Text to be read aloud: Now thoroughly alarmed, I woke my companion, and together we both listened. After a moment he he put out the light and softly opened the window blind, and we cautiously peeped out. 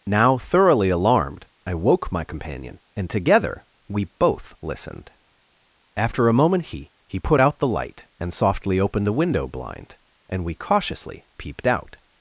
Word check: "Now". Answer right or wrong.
right